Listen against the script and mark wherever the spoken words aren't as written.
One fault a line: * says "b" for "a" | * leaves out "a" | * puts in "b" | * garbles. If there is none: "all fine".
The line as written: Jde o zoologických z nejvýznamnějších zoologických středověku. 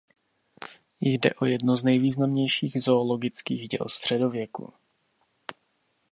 * says "jedno" for "zoologických"
* puts in "děl"